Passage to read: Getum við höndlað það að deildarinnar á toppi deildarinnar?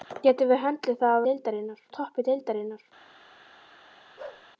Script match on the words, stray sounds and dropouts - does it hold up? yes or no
no